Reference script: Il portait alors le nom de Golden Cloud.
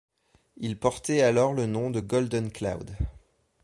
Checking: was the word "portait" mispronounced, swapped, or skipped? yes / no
no